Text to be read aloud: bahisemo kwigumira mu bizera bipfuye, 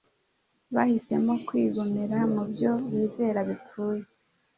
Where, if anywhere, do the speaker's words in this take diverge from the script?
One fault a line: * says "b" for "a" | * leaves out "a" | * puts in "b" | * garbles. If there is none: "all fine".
* puts in "byo"